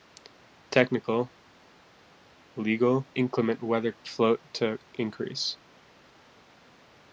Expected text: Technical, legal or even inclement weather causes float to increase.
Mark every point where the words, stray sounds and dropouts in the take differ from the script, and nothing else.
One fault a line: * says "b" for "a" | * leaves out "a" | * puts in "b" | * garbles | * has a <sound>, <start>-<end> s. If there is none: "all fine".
* leaves out "or even"
* leaves out "causes"